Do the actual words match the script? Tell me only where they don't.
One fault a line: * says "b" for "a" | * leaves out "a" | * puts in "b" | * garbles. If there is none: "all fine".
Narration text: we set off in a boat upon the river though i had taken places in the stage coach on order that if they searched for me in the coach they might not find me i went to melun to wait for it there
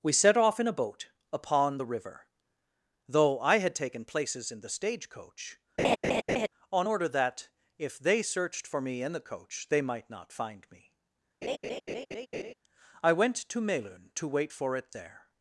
all fine